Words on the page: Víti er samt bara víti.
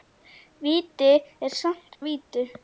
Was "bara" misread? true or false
true